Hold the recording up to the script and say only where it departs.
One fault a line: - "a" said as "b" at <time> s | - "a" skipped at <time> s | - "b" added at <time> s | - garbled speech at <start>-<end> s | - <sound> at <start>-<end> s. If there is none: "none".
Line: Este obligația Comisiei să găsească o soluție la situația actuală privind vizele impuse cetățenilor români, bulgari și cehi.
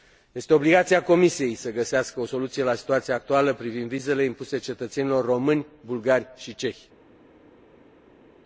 none